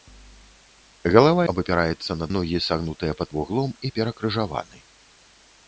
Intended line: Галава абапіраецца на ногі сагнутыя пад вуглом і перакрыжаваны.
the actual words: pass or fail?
pass